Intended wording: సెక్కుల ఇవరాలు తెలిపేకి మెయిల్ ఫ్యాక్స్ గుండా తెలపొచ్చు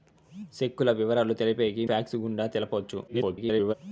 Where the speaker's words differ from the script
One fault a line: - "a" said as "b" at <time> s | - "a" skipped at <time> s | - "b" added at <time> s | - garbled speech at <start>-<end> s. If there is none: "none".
- "మెయిల్" skipped at 1.8 s
- garbled speech at 3.1-3.7 s